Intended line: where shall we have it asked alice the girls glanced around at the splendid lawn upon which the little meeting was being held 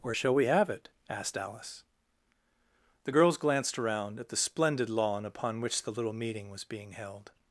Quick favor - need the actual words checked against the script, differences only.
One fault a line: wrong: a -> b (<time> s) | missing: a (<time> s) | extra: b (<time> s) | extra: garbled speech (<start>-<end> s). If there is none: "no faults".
no faults